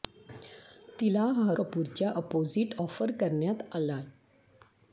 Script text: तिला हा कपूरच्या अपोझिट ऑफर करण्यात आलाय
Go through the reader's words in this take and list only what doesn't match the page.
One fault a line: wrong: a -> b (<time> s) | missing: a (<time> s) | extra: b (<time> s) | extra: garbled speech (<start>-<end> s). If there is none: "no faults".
no faults